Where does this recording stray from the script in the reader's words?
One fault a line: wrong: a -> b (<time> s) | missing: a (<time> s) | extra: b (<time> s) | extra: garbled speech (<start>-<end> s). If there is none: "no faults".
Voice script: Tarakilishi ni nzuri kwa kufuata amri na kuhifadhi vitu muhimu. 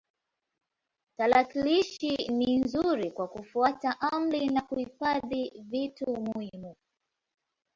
no faults